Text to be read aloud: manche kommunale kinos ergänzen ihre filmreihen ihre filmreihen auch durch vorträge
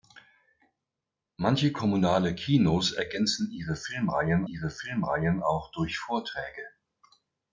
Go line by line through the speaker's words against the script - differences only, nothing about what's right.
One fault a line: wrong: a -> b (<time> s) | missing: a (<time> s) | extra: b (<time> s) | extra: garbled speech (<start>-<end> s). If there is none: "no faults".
no faults